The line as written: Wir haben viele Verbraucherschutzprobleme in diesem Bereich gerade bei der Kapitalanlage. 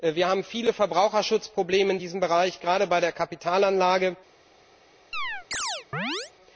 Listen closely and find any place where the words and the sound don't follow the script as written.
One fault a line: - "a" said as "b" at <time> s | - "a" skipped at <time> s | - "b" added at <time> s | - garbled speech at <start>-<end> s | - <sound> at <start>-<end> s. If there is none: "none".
- chirp at 5.1-6.3 s